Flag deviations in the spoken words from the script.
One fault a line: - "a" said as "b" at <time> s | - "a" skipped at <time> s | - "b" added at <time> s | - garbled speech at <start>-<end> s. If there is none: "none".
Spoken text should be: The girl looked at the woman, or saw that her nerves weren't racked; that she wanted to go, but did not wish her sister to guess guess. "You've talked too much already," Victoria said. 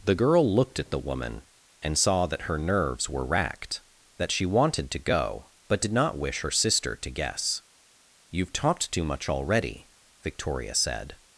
- "or" said as "and" at 1.8 s
- "weren't" said as "were" at 3.1 s
- "guess" skipped at 7.6 s